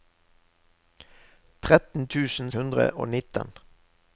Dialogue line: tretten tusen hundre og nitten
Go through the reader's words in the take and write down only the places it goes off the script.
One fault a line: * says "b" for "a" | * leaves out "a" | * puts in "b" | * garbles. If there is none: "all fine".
all fine